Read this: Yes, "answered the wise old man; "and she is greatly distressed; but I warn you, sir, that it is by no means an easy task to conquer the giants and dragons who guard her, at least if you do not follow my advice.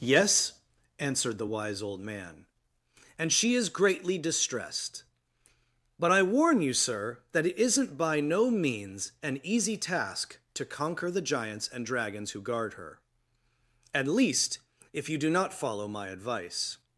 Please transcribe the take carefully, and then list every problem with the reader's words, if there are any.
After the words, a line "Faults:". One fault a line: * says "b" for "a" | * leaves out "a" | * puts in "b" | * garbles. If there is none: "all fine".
Yes, "answered the wise old man; "and she is greatly distressed; but I warn you, sir, that it isn't by no means an easy task to conquer the giants and dragons who guard her, at least if you do not follow my advice.
Faults:
* says "isn't" for "is"